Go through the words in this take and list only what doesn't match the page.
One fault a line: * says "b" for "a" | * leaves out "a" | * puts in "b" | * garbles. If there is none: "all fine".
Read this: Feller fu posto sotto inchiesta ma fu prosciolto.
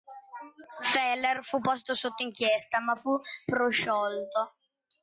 all fine